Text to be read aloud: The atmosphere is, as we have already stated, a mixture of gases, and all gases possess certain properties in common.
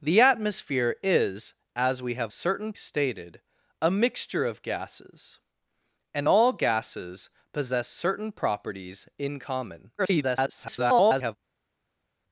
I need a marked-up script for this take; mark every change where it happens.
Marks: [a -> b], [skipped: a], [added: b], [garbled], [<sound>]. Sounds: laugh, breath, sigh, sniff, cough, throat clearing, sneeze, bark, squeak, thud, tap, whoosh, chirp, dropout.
The atmosphere is, as we have [already -> certain] stated, a mixture of gases, and all gases possess certain properties in common. [garbled]